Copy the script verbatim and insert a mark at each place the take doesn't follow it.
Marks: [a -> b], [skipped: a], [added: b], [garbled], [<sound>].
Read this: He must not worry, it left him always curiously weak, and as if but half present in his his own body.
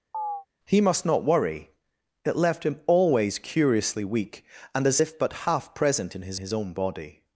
[chirp] He must not worry, it left him always curiously weak, and as if but half present in his his own body.